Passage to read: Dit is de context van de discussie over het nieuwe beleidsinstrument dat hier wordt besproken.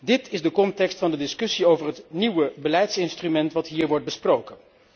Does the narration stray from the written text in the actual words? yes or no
no